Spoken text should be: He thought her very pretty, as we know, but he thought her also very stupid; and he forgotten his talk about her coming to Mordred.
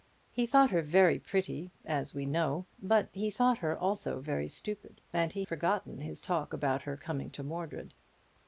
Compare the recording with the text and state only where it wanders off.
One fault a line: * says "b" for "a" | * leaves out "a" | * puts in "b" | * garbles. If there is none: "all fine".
all fine